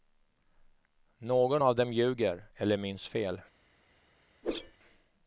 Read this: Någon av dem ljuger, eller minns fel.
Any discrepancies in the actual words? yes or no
no